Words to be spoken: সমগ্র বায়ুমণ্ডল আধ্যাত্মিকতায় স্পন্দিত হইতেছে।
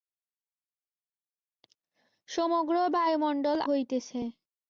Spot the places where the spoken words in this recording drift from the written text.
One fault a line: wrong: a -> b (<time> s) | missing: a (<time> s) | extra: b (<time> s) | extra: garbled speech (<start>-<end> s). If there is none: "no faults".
missing: আধ্যাত্মিকতায় স্পন্দিত (3.6 s)